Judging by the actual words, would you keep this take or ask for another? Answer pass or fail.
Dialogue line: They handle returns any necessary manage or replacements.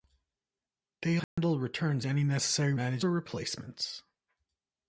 pass